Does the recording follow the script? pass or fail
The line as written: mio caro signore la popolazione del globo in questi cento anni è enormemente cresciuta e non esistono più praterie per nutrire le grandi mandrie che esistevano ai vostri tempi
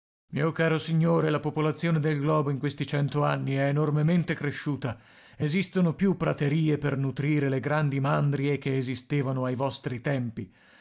fail